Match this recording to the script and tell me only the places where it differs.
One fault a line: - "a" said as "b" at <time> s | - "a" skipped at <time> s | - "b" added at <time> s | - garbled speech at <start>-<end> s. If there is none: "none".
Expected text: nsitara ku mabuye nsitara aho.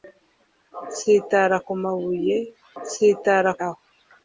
none